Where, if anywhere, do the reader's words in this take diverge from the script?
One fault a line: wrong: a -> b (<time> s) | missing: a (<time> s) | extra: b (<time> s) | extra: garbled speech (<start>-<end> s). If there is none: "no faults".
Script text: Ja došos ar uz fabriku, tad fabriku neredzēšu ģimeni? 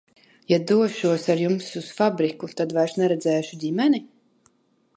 extra: jums (1.4 s)
wrong: fabriku -> vairs (2.8 s)